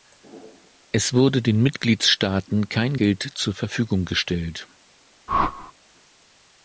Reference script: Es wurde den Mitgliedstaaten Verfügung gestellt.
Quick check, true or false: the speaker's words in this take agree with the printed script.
false